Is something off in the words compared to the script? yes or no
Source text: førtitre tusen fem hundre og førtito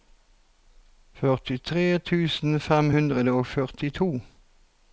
no